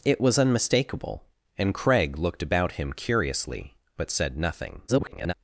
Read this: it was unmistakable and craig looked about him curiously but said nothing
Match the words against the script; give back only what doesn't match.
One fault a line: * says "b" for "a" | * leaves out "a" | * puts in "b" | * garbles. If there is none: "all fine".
* garbles